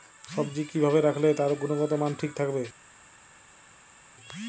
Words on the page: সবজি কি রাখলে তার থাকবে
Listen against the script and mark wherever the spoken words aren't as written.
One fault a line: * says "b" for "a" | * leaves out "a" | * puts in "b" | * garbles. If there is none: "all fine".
* puts in "ভাবে"
* puts in "গুনগতমান ঠিক"